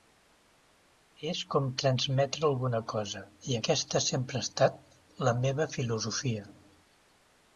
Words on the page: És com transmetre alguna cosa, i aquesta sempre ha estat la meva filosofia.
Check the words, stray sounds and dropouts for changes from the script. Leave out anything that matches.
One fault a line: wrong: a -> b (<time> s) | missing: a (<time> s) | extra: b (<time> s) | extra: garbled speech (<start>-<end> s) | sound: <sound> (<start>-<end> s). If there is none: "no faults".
no faults